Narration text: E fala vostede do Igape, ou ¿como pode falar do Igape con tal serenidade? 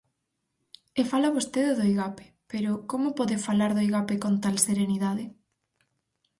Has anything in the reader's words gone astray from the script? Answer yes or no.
yes